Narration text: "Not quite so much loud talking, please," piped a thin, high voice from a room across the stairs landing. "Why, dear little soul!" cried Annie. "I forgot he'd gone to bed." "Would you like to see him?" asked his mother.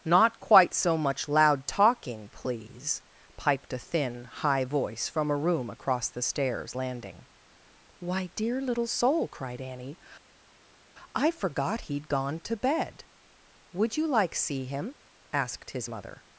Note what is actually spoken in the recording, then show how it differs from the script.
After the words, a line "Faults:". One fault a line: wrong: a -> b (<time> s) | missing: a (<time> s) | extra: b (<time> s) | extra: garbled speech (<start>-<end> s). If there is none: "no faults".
"Not quite so much loud talking, please," piped a thin, high voice from a room across the stairs landing. "Why, dear little soul!" cried Annie. "I forgot he'd gone to bed." "Would you like see him?" asked his mother.
Faults:
missing: to (14.3 s)